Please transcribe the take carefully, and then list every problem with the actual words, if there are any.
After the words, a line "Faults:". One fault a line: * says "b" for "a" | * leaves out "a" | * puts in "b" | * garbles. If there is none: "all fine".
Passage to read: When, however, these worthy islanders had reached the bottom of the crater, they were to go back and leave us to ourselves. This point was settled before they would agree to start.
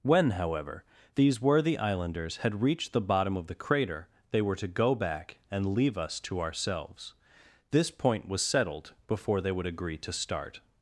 When, however, these worthy islanders had reached the bottom of the crater, they were to go back and leave us to ourselves. This point was settled before they would agree to start.
Faults:
all fine